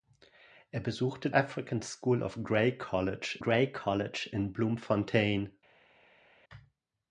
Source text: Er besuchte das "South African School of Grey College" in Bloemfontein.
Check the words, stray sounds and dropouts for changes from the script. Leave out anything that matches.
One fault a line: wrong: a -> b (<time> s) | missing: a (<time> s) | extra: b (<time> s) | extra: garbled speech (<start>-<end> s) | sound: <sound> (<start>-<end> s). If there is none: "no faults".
missing: das South (1.3 s)
extra: Grey College (3.4 s)